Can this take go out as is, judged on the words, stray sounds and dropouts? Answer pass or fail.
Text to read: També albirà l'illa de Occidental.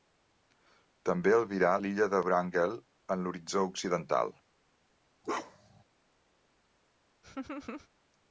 fail